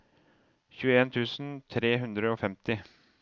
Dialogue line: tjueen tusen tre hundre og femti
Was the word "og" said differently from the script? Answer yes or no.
no